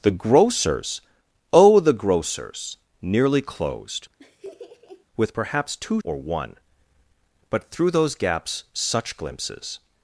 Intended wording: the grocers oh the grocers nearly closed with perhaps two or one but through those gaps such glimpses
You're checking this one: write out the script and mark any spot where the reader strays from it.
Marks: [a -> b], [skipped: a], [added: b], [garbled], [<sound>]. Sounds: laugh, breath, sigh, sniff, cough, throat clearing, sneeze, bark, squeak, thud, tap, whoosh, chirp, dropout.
the grocers oh the grocers nearly closed [laugh] with perhaps two or one but through those gaps such glimpses